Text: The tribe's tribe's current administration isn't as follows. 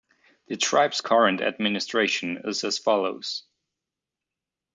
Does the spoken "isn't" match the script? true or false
false